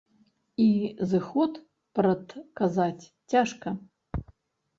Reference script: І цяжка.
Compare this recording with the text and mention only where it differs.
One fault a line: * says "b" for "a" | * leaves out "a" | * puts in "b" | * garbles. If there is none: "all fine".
* puts in "зыход прадказаць"